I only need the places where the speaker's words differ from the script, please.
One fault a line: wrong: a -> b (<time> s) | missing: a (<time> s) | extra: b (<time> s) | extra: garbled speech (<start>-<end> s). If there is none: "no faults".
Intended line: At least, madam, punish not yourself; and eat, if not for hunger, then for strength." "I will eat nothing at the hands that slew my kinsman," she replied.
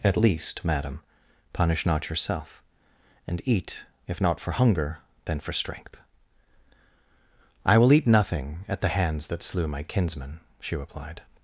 no faults